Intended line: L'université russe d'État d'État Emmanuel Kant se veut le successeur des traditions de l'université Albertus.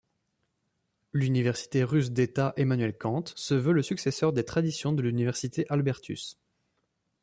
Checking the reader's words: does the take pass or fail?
fail